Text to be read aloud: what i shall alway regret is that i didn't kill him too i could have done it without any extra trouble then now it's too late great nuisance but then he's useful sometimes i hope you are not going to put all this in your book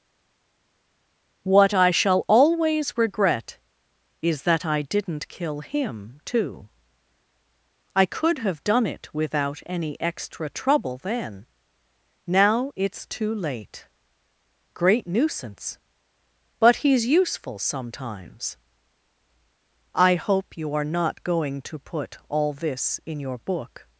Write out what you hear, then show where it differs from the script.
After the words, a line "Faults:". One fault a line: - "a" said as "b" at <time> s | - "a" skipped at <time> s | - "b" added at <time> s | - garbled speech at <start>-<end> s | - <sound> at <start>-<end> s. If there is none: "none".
what i shall always regret is that i didn't kill him too i could have done it without any extra trouble then now it's too late great nuisance but he's useful sometimes i hope you are not going to put all this in your book
Faults:
- "alway" said as "always" at 2.3 s
- "then" skipped at 16.8 s